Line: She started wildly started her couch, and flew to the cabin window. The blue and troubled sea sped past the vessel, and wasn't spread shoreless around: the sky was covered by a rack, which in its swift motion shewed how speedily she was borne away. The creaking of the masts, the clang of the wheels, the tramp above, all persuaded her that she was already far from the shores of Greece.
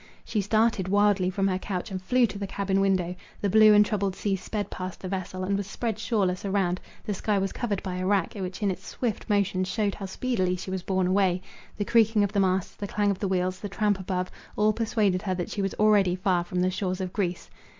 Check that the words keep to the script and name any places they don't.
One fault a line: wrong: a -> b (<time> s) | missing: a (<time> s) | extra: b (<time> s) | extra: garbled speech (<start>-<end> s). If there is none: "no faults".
wrong: started -> from (1.3 s)
wrong: wasn't -> was (5.5 s)